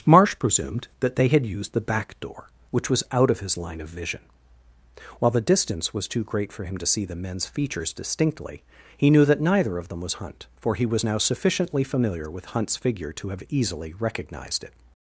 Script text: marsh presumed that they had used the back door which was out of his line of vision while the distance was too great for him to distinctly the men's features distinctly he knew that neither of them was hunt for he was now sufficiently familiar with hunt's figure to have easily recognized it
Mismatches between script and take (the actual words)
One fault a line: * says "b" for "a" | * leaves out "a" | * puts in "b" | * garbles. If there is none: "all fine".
* says "see" for "distinctly"